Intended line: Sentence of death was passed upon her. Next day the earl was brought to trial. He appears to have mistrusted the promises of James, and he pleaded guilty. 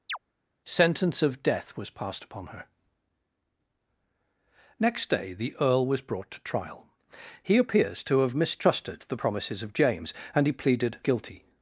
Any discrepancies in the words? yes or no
no